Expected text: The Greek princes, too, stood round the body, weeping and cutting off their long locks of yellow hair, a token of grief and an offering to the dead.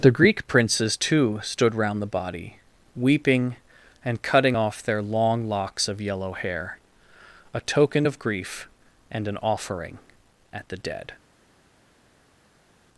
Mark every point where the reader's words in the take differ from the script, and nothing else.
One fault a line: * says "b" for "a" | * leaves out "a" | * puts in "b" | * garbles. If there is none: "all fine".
* says "at" for "to"